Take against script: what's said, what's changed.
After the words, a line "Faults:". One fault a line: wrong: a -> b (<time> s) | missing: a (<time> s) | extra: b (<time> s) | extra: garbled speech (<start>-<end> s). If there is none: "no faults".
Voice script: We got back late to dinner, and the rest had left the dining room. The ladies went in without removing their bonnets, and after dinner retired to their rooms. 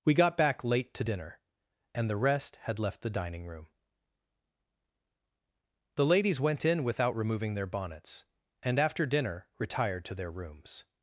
We got back late to dinner, and the rest had left the dining room. The ladies went in without removing their bonnets, and after dinner retired to their rooms.
Faults:
no faults